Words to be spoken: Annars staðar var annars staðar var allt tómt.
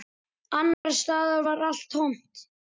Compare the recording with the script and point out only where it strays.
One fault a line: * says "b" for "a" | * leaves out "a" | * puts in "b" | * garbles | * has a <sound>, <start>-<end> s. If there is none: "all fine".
* has a dropout, 0.7-0.8 s
* leaves out "annars staðar var"